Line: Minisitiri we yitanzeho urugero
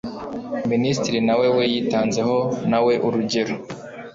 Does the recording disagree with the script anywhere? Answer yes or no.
yes